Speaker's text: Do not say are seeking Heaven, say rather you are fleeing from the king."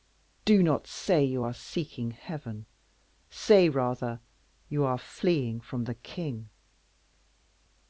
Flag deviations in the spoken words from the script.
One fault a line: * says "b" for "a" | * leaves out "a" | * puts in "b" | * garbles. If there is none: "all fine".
* puts in "you"